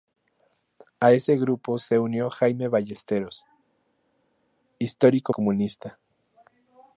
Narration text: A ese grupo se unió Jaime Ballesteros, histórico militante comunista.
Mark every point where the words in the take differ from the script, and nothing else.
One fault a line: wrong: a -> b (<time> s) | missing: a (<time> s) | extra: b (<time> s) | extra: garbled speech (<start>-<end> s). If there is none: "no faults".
missing: militante (5.3 s)